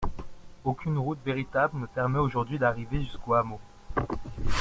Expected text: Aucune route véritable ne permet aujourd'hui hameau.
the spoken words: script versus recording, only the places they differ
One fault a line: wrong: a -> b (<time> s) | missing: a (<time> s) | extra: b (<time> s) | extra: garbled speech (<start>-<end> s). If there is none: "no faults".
extra: d'arriver jusqu'au (2.6 s)